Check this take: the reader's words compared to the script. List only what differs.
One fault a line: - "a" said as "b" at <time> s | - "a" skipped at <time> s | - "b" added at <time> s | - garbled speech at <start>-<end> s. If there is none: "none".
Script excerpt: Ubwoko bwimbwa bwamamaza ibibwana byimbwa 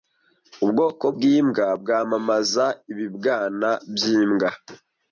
none